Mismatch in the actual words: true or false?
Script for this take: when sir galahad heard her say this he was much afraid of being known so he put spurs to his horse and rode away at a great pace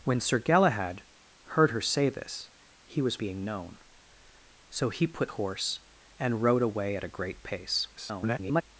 true